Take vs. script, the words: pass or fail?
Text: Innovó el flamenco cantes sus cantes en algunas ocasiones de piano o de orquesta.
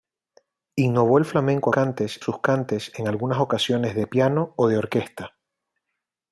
pass